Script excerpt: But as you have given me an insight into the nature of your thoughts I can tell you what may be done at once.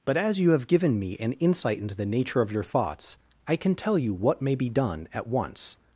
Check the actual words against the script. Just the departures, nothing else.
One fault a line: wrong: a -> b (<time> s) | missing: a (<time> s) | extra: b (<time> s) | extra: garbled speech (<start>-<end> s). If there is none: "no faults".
no faults